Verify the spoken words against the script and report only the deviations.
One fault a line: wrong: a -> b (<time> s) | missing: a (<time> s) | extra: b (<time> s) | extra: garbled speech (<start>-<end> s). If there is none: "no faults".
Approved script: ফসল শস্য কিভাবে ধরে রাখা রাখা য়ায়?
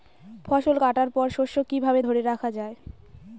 extra: কাটার পর (0.8 s)
missing: রাখা (2.5 s)